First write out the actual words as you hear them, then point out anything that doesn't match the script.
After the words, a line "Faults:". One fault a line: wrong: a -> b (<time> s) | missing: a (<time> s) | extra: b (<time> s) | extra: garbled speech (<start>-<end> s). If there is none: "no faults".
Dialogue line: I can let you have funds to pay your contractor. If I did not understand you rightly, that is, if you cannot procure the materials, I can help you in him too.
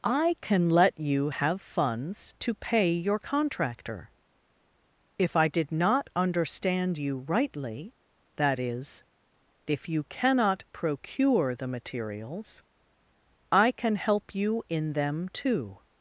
I can let you have funds to pay your contractor. If I did not understand you rightly, that is, if you cannot procure the materials, I can help you in them too.
Faults:
wrong: him -> them (14.9 s)